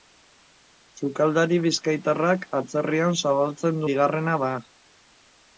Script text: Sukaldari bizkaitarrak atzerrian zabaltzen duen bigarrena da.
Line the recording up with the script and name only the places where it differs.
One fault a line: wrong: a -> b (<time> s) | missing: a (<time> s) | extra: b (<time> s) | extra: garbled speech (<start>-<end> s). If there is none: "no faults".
missing: duen (3.9 s)